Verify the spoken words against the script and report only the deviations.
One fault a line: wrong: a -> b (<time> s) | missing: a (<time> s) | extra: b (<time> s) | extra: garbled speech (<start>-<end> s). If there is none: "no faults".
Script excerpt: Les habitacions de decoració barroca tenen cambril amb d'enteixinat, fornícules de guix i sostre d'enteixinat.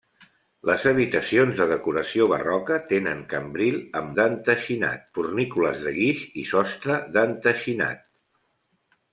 no faults